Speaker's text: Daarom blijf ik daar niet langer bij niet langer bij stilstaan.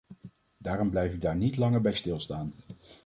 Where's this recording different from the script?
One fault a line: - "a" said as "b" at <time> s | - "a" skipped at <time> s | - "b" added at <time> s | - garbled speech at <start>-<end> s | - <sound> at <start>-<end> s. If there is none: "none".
- "niet langer bij" skipped at 1.9 s